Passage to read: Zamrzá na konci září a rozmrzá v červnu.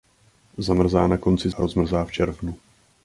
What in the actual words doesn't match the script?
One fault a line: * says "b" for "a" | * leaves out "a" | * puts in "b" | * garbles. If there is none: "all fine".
* leaves out "září"